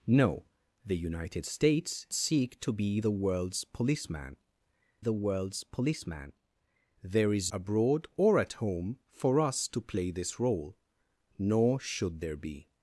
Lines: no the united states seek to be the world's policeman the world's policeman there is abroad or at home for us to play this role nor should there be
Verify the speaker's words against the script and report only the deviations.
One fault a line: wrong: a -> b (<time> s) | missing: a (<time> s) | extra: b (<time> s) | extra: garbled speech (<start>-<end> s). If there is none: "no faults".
no faults